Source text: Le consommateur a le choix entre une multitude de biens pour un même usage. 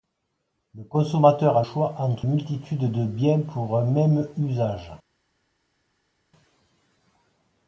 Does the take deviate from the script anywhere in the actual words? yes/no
yes